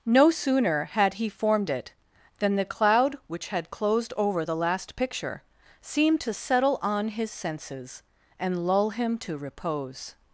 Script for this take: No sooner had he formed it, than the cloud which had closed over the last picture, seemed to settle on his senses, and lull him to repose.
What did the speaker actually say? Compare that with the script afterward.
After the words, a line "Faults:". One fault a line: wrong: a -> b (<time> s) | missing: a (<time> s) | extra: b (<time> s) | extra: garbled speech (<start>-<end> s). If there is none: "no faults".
No sooner had he formed it, than the cloud which had closed over the last picture, seemed to settle on his senses, and lull him to repose.
Faults:
no faults